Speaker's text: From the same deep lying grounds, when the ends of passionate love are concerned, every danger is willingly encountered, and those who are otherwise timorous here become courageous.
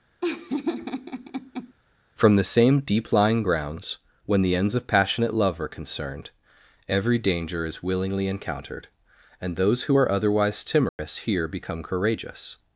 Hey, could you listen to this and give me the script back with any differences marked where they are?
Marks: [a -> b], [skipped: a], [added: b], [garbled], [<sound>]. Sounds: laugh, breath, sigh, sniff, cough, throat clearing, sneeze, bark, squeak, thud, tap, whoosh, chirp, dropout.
[laugh] From the same deep lying grounds, when the ends of passionate love are concerned, every danger is willingly encountered, and those who are otherwise timorous [dropout] here become courageous.